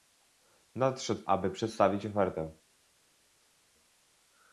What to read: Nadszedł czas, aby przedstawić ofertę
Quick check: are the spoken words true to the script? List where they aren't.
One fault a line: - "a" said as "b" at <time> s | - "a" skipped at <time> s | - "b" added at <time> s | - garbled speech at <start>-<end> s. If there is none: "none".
- "czas" skipped at 1.2 s